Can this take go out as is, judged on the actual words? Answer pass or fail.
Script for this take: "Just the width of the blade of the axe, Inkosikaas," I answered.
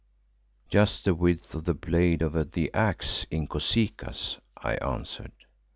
pass